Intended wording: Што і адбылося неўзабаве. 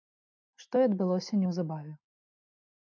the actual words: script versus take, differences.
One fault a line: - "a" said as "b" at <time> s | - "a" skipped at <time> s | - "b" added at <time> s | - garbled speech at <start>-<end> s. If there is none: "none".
none